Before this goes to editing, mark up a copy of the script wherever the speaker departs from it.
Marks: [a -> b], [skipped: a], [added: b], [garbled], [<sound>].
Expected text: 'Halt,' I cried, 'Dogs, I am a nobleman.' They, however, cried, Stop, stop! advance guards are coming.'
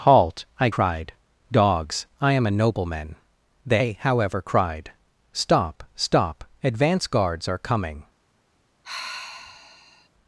'Halt,' I cried, 'Dogs, I am a nobleman.' They, however, cried, Stop, stop! advance guards are coming.' [sigh]